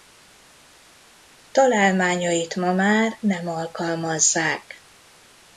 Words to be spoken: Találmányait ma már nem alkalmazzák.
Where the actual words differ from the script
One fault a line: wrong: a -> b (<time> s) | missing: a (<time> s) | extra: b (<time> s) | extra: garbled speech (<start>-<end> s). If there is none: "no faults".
no faults